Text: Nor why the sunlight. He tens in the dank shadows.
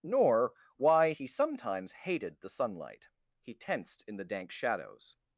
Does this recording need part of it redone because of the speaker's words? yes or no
yes